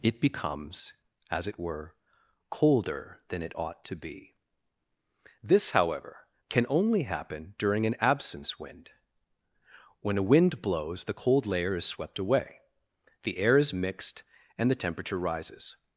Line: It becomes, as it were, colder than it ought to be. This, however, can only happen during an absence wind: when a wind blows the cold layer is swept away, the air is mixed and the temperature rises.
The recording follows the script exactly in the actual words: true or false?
true